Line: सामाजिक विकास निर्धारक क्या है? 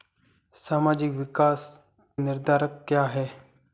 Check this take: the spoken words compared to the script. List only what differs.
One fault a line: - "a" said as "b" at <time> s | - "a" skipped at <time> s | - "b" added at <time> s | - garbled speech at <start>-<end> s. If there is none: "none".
none